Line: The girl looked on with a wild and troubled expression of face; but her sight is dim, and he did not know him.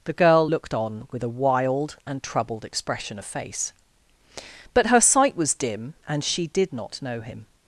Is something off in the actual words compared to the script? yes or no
yes